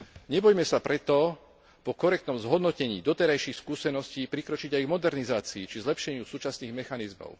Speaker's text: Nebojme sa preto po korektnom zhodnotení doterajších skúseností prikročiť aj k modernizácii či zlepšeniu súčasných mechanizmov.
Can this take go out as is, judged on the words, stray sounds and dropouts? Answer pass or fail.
pass